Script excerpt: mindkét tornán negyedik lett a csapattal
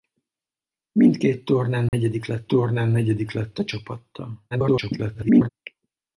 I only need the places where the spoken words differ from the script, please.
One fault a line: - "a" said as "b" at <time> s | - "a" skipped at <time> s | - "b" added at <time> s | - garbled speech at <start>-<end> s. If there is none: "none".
- "tornán negyedik lett" added at 2.5 s
- garbled speech at 4.5-5.5 s